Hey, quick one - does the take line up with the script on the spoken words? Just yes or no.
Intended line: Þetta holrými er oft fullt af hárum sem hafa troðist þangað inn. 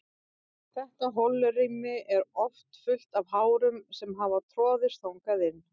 yes